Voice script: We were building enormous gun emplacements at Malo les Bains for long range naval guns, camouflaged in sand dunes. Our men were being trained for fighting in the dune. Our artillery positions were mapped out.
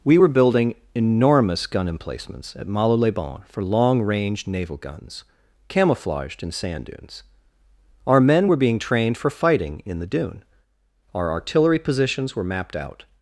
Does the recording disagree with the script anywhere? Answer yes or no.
no